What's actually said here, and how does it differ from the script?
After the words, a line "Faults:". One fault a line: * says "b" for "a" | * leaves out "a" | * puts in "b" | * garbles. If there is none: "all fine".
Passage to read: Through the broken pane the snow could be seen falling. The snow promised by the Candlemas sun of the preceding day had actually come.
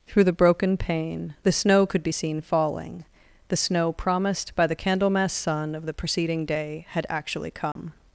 Through the broken pane the snow could be seen falling. The snow promised by the Candlemas sun of the preceding day had actually come.
Faults:
all fine